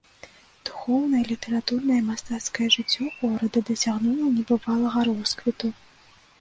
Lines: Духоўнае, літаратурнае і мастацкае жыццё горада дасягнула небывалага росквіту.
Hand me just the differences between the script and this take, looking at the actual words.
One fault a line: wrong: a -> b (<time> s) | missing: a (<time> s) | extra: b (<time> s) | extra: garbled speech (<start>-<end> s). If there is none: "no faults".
no faults